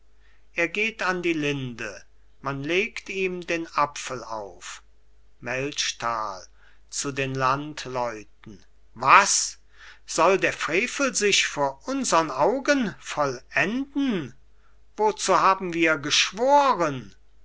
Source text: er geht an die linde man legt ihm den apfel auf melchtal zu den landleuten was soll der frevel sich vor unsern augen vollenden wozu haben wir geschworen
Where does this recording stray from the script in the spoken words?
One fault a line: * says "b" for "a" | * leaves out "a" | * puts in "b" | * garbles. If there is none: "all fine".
all fine